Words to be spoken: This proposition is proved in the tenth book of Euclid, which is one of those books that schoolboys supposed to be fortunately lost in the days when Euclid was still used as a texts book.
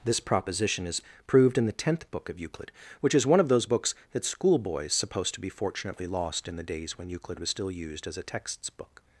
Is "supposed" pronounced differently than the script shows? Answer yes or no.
no